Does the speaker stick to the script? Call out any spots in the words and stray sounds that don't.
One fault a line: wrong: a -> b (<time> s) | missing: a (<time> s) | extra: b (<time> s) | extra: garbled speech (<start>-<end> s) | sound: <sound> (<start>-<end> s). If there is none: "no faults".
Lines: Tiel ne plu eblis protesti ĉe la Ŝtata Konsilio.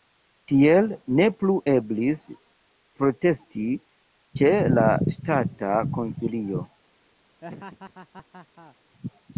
sound: laugh (7.4-8.8 s)